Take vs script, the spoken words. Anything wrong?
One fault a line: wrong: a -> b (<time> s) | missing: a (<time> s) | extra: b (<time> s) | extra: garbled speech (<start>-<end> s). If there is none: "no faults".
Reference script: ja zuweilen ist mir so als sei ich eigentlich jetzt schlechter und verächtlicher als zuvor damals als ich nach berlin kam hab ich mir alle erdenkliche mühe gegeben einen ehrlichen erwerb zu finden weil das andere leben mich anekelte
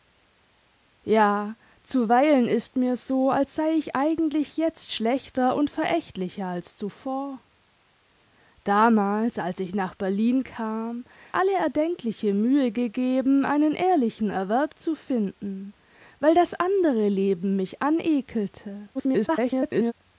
missing: hab ich mir (11.1 s)
extra: garbled speech (18.9-19.9 s)